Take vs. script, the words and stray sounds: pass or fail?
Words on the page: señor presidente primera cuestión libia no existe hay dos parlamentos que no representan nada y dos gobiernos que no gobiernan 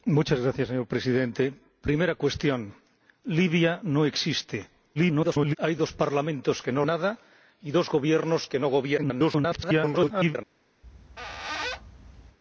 fail